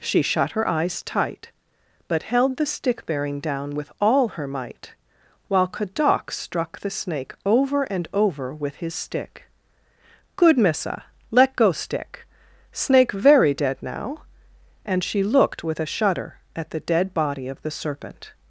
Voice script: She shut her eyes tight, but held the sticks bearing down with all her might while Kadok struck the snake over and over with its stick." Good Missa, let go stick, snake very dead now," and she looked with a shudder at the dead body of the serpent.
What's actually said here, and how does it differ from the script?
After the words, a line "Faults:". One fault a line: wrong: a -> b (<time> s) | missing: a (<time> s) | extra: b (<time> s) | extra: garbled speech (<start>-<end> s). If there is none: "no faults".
She shut her eyes tight, but held the stick bearing down with all her might while Kadok struck the snake over and over with his stick." Good Missa, let go stick, snake very dead now," and she looked with a shudder at the dead body of the serpent.
Faults:
wrong: sticks -> stick (2.6 s)
wrong: its -> his (8.8 s)